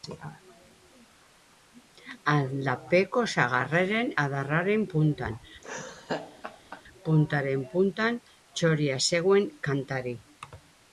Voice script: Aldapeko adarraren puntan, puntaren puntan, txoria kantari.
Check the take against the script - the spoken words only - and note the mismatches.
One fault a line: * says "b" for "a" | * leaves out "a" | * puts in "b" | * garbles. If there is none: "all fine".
* puts in "sagarraren"
* puts in "zegoen"